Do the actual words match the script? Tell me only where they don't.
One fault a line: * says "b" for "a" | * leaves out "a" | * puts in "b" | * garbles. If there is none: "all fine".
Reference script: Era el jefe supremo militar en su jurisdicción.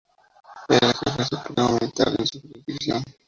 all fine